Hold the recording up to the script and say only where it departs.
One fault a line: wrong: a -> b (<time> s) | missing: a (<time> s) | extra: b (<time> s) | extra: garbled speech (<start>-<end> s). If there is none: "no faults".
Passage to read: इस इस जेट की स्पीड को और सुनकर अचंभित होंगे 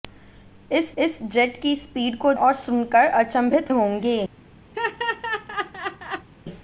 no faults